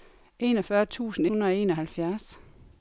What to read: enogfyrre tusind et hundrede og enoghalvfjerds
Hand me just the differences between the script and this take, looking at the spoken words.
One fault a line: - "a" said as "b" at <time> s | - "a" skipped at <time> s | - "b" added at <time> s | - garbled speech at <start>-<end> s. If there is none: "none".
- "et" skipped at 1.3 s